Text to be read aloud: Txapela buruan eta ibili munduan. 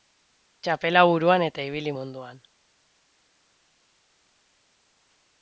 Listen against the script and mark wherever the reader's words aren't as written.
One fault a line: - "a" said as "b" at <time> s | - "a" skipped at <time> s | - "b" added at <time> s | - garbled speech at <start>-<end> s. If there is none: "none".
none